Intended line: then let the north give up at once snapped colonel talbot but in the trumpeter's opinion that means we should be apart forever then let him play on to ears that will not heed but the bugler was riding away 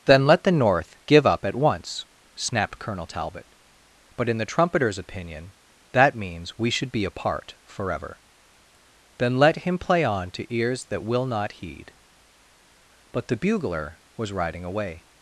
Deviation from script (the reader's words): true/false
false